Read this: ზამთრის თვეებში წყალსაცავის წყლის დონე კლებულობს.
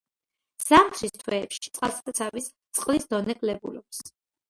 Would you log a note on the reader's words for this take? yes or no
no